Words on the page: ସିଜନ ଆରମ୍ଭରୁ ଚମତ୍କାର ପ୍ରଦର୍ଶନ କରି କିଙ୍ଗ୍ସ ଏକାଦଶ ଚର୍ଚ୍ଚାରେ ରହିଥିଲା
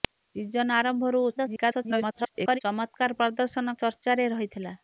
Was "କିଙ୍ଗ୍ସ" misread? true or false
true